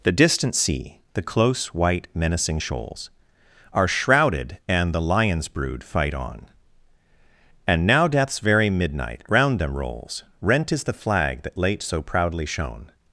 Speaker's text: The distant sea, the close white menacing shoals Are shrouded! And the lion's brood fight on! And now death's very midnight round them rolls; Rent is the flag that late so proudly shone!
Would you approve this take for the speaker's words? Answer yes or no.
yes